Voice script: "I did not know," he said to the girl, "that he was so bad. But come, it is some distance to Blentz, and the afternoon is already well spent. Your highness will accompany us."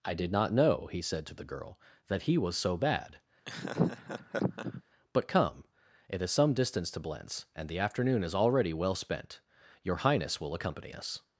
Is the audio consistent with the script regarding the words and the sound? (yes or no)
no